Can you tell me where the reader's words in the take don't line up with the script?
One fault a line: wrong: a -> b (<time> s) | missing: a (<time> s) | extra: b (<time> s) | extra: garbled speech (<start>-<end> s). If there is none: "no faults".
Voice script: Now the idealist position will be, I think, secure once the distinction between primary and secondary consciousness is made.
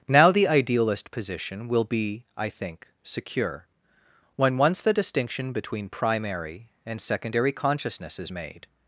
extra: when (4.4 s)